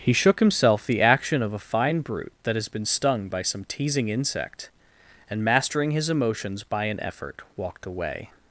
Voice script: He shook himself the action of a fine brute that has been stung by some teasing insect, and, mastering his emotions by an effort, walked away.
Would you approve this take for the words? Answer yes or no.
yes